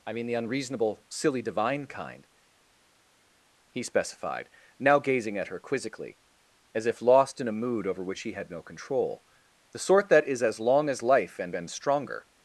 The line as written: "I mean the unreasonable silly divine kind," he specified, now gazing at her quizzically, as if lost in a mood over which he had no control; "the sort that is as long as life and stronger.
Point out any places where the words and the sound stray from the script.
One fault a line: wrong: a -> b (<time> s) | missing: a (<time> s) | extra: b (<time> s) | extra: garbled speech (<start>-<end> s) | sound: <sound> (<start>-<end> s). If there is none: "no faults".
extra: and (11.5 s)